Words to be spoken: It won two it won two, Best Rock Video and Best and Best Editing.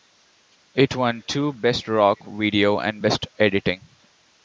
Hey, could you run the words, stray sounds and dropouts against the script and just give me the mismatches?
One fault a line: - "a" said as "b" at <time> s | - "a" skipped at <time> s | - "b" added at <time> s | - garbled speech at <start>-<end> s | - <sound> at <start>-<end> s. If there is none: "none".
- "it won two" skipped at 1.5 s
- "and Best" skipped at 3.3 s